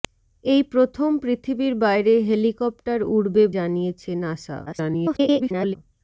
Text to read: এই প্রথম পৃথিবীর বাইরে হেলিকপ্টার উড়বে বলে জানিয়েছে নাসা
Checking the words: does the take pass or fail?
fail